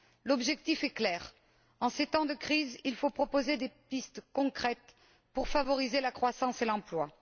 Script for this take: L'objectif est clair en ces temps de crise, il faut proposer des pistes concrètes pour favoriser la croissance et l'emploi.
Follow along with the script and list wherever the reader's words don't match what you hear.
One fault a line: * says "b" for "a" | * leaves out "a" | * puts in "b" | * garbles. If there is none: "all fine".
all fine